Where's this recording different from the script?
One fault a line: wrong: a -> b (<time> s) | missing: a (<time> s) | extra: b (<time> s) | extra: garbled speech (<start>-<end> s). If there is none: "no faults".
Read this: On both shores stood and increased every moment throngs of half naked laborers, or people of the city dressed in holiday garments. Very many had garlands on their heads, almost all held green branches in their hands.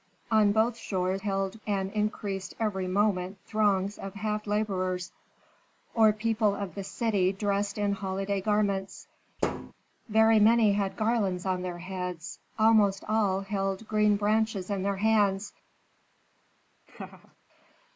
wrong: stood -> held (1.2 s)
missing: naked (4.5 s)